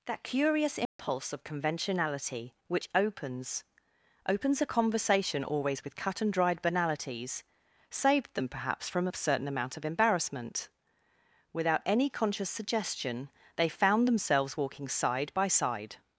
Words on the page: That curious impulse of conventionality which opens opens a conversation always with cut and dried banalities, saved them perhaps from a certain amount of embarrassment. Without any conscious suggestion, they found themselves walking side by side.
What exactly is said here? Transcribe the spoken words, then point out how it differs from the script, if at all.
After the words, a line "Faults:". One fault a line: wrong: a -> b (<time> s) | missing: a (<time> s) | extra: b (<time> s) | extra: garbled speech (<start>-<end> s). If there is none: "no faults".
That curious impulse of conventionality which opens opens a conversation always with cut and dried banalities, saved them perhaps from a certain amount of embarrassment. Without any conscious suggestion, they found themselves walking side by side.
Faults:
no faults